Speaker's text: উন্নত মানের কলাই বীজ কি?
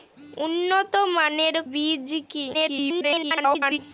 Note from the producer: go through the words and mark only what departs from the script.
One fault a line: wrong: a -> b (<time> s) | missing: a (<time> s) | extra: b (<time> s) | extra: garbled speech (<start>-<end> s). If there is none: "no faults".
missing: কলাই (1.6 s)
extra: garbled speech (2.5-3.8 s)